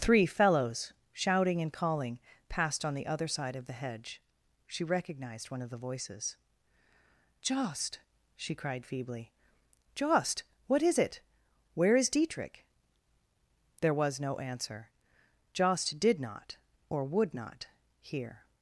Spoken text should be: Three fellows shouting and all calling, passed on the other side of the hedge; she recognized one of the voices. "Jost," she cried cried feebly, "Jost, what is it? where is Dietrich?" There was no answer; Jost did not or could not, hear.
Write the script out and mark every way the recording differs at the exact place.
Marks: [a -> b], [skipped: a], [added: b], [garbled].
Three fellows shouting and [skipped: all] calling, passed on the other side of the hedge; she recognized one of the voices. "Jost," she cried [skipped: cried] feebly, "Jost, what is it? where is Dietrich?" There was no answer; Jost did not or [could -> would] not, hear.